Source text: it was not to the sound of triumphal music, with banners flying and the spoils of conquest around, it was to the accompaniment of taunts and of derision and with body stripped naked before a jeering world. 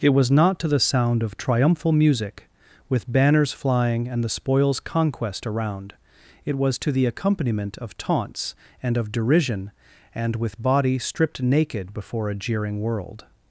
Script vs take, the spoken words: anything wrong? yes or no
yes